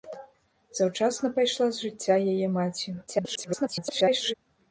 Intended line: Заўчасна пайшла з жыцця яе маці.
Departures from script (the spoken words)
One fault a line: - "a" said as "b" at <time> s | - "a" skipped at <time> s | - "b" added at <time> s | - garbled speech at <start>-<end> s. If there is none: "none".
- garbled speech at 3.1-4.3 s